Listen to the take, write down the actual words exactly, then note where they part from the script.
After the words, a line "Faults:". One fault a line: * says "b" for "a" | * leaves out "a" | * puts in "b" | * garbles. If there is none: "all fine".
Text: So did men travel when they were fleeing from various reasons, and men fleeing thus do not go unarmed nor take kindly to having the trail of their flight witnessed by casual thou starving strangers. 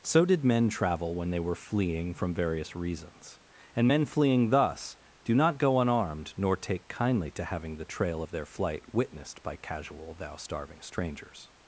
So did men travel when they were fleeing from various reasons, and men fleeing thus do not go unarmed nor take kindly to having the trail of their flight witnessed by casual thou starving strangers.
Faults:
all fine